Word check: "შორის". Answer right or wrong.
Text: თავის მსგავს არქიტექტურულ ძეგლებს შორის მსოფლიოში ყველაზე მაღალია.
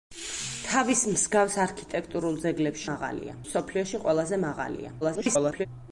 wrong